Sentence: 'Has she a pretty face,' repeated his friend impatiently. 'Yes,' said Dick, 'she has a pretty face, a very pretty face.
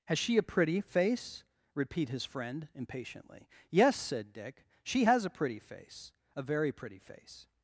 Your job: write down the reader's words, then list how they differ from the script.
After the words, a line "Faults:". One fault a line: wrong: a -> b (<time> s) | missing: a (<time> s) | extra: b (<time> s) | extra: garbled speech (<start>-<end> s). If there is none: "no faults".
'Has she a pretty face,' repeat his friend impatiently. 'Yes,' said Dick, 'she has a pretty face, a very pretty face.
Faults:
wrong: repeated -> repeat (1.7 s)